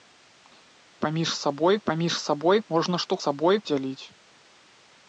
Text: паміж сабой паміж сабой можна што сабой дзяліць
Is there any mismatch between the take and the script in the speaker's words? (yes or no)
no